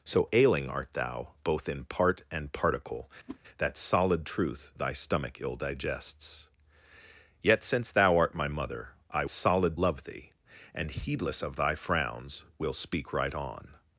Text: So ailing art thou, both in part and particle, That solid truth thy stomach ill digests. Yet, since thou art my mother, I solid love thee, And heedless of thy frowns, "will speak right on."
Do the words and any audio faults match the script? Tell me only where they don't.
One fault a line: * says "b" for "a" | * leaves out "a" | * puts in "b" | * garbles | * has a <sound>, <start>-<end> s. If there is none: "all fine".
* has a whoosh, 3.3-3.4 s